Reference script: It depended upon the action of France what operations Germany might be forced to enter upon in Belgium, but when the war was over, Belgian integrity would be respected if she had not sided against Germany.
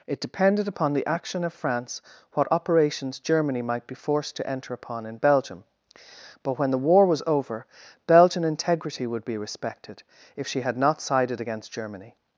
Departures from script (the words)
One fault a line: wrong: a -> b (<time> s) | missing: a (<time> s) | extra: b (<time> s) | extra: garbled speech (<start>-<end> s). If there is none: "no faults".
no faults